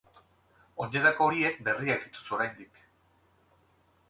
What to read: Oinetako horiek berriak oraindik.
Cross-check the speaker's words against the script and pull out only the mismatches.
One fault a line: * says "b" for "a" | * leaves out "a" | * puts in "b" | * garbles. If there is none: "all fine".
* puts in "dituzu"